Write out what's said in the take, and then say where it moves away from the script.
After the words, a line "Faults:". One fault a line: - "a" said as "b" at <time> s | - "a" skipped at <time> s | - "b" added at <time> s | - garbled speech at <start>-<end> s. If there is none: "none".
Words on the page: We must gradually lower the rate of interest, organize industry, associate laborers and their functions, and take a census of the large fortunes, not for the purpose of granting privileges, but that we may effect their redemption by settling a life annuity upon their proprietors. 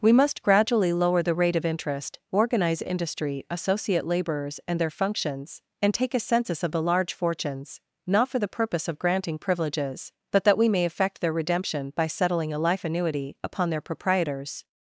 We must gradually lower the rate of interest, organize industry, associate laborers and their functions, and take a census of the large fortunes, not for the purpose of granting privileges, but that we may effect their redemption by settling a life annuity upon their proprietors.
Faults:
none